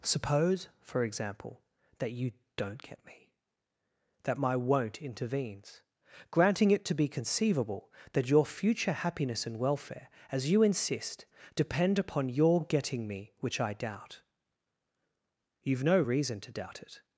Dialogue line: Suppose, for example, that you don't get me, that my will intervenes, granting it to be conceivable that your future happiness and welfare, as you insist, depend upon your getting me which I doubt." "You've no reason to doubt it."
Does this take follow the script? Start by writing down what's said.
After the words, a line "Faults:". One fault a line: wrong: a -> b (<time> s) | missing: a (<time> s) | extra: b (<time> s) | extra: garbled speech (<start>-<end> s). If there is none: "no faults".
Suppose, for example, that you don't get me, that my won't intervenes, granting it to be conceivable that your future happiness and welfare, as you insist, depend upon your getting me which I doubt." "You've no reason to doubt it."
Faults:
wrong: will -> won't (4.5 s)